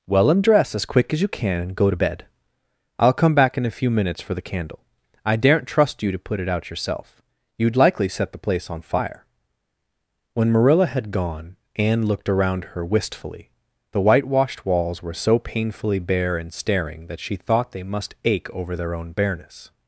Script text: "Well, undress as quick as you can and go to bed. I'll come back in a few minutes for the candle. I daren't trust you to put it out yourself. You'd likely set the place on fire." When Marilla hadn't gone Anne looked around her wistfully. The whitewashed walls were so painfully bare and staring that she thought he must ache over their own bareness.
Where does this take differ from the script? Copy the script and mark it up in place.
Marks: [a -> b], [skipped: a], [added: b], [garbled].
"Well, undress as quick as you can and go to bed. I'll come back in a few minutes for the candle. I daren't trust you to put it out yourself. You'd likely set the place on fire." When Marilla [hadn't -> had] gone Anne looked around her wistfully. The whitewashed walls were so painfully bare and staring that she thought [he -> they] must ache over their own bareness.